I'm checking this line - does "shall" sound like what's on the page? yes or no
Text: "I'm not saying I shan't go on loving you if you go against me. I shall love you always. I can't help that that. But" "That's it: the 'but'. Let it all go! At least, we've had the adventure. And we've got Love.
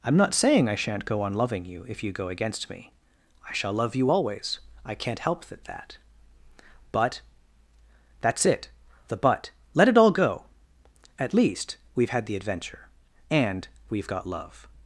yes